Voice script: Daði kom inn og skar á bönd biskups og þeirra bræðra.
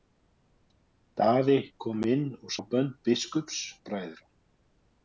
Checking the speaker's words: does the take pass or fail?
fail